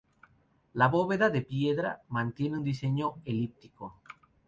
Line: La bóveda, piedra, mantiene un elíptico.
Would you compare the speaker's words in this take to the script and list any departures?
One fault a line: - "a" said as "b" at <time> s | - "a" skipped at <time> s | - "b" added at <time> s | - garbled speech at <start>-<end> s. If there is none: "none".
- "de" added at 1.3 s
- "diseño" added at 2.6 s